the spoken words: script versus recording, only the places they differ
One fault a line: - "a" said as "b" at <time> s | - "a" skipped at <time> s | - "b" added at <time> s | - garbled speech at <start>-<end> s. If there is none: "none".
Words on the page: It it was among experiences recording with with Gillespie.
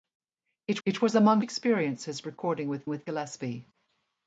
none